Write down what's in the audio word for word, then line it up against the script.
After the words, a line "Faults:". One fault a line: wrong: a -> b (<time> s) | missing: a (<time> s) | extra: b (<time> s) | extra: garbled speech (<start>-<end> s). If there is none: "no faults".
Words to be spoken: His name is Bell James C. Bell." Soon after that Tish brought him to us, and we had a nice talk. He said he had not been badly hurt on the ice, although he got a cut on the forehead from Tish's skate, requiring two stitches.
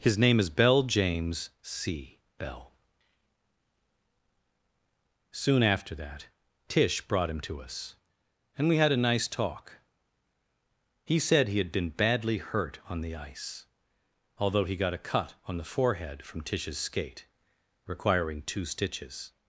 His name is Bell James C. Bell." Soon after that Tish brought him to us, and we had a nice talk. He said he had been badly hurt on the ice, although he got a cut on the forehead from Tish's skate, requiring two stitches.
Faults:
missing: not (11.7 s)